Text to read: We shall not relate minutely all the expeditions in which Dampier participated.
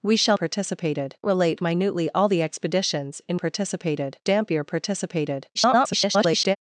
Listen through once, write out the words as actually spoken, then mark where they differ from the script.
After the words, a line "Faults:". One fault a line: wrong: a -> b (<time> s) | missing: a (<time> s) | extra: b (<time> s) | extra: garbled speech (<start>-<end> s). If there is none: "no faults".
We shall participated relate minutely all the expeditions in participated Dampier participated. [garbled]
Faults:
wrong: not -> participated (0.3 s)
wrong: which -> participated (3.3 s)
extra: garbled speech (5.5-6.6 s)